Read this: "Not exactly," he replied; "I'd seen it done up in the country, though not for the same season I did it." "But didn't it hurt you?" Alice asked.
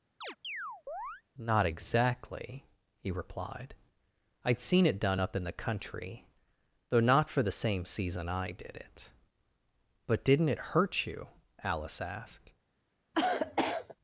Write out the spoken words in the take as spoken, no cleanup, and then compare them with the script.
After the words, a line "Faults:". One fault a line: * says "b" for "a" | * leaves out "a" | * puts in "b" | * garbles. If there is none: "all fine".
"Not exactly," he replied; "I'd seen it done up in the country, though not for the same season I did it." "But didn't it hurt you?" Alice asked.
Faults:
all fine